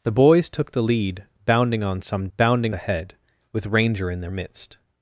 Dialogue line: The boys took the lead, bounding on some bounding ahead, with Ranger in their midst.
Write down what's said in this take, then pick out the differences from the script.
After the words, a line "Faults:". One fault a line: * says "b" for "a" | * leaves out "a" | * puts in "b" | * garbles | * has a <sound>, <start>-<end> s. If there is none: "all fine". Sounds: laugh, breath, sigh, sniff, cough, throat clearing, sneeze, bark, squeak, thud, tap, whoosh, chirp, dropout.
The boys took the lead, bounding on some bounding ahead, with Ranger in their midst.
Faults:
all fine